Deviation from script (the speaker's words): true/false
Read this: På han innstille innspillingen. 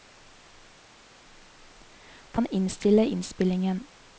false